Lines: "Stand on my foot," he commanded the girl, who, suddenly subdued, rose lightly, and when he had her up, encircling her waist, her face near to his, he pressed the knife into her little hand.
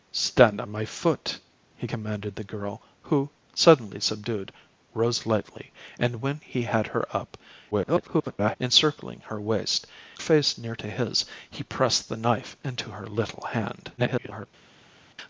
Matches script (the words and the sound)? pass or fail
fail